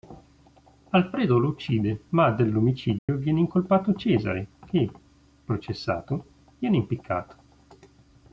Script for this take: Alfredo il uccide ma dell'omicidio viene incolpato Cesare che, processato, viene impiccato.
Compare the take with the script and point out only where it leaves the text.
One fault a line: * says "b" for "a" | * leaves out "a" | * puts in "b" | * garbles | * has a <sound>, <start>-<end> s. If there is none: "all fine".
* says "lo" for "il"
* has a dropout, 3.0-3.1 s